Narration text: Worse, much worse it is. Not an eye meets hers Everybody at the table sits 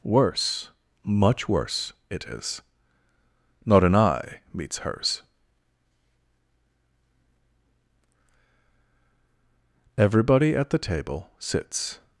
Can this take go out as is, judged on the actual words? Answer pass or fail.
pass